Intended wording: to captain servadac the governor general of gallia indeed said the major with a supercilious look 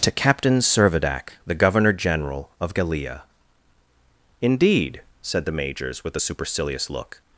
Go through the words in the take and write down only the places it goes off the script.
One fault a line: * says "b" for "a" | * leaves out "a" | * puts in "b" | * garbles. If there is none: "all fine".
* says "majors" for "major"